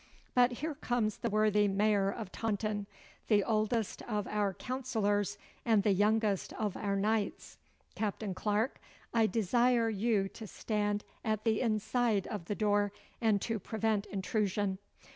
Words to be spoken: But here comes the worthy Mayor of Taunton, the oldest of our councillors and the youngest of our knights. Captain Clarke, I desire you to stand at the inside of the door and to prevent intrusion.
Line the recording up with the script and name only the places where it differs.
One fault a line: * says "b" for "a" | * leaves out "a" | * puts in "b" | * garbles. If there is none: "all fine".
all fine